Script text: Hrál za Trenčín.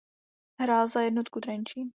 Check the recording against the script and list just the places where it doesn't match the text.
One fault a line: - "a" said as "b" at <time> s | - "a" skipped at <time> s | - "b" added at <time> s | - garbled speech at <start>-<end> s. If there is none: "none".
- "Jednotu" added at 1.0 s